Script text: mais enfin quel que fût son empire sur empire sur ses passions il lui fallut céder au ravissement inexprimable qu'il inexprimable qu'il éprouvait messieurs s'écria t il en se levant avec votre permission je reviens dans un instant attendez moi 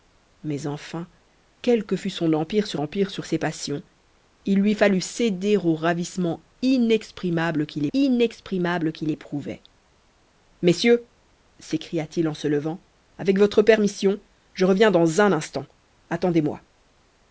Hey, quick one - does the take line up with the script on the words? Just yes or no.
yes